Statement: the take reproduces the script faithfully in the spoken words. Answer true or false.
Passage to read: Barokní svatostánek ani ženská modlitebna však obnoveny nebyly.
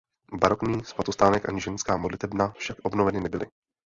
true